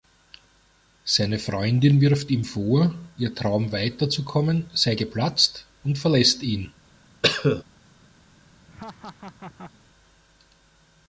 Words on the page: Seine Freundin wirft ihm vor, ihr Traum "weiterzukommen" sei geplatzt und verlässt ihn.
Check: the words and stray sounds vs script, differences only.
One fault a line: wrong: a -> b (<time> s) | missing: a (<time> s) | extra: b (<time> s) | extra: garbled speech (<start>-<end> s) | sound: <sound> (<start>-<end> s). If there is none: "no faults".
sound: cough (7.2-7.6 s)
sound: laugh (8.7-9.7 s)